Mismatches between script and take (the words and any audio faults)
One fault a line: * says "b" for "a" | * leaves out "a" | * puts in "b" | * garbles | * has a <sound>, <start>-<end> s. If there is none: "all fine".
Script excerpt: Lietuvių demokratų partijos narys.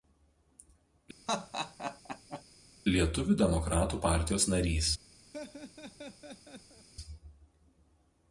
* has a laugh, 1.3-2.4 s
* has a laugh, 5.3-6.9 s